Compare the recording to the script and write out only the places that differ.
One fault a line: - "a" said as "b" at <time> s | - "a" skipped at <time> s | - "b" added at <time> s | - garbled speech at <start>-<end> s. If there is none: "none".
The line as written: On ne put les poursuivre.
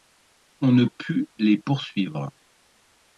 none